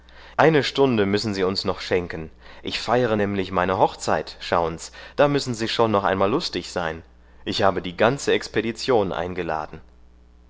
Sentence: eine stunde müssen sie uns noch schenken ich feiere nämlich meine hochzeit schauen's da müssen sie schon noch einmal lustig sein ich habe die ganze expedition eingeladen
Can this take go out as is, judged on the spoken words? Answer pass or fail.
pass